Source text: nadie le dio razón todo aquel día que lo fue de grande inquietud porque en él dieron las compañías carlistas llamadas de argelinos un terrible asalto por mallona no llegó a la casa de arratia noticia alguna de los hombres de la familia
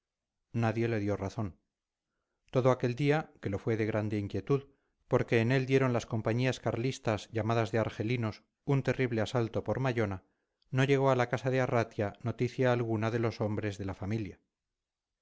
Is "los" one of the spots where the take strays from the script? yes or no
no